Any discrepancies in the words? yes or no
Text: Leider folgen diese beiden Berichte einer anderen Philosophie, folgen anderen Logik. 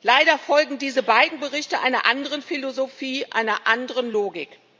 yes